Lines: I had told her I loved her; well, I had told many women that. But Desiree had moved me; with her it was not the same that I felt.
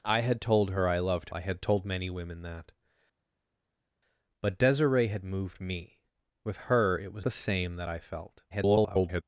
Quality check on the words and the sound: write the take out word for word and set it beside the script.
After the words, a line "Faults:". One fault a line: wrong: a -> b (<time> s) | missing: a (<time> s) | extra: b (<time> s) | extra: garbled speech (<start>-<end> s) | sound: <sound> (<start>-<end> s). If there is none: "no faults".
I had told her I loved I had told many women that. But Desiree had moved me; with her it was the same that I felt. [garbled]
Faults:
missing: her well (1.3 s)
missing: not (7.3 s)
extra: garbled speech (8.5-9.2 s)